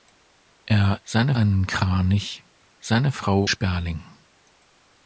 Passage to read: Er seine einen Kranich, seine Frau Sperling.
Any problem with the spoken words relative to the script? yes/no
no